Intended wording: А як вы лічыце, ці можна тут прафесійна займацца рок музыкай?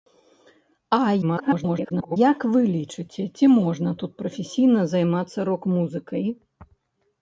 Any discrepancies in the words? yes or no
yes